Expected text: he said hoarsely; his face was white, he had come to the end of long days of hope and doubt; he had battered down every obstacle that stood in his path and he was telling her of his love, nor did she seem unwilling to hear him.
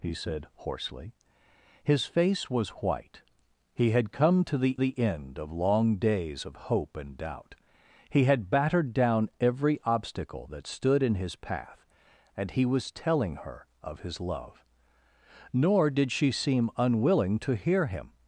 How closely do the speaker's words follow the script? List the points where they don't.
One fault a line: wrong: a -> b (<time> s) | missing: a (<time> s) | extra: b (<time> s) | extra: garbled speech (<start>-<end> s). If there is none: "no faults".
extra: the (4.8 s)